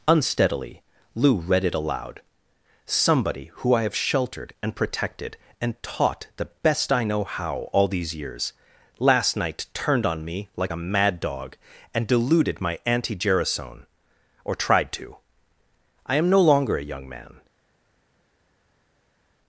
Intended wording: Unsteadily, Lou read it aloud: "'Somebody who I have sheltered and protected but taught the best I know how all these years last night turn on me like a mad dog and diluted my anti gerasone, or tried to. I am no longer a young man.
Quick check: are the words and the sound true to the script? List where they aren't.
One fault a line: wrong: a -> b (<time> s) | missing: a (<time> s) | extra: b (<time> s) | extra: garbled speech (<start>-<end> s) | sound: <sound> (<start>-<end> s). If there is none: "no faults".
wrong: but -> and (5.6 s)
wrong: turn -> turned (9.8 s)